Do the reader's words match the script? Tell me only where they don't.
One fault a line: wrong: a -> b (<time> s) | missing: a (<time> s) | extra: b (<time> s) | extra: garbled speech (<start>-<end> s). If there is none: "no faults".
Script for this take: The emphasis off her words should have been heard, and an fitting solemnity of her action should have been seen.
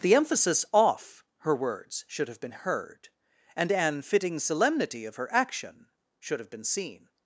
no faults